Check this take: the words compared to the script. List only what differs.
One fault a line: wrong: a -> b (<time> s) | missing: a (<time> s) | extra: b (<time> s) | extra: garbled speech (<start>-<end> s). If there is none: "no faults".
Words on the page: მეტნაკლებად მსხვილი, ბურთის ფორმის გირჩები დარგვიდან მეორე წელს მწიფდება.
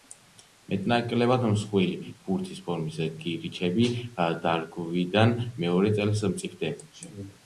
no faults